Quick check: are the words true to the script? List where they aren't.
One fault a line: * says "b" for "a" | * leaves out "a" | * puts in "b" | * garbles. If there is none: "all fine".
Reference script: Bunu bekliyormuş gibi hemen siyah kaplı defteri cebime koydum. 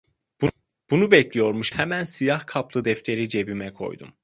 * leaves out "gibi"